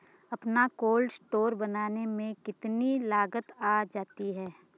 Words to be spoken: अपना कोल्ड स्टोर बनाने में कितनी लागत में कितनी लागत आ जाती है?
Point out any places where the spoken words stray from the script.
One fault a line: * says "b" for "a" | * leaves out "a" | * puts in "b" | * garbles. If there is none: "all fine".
* leaves out "में कितनी लागत"